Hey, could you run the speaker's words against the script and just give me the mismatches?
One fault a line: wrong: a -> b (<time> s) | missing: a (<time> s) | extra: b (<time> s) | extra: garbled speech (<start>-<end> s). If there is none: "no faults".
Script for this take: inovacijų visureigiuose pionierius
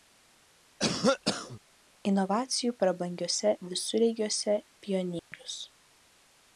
extra: prabangiuose (2.8 s)